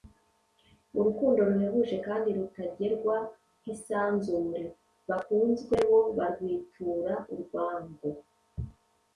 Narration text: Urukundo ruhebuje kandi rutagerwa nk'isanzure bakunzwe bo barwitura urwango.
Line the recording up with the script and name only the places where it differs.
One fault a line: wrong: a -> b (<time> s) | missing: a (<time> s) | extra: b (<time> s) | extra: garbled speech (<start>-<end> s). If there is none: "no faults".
no faults